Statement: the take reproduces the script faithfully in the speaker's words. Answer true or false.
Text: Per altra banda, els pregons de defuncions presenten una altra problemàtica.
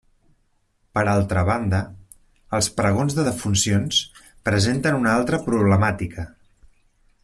true